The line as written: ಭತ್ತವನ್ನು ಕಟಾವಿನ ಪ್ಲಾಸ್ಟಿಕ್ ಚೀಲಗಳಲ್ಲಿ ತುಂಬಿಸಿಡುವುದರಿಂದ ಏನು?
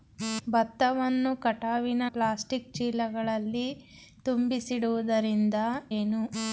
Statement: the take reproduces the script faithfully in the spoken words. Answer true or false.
true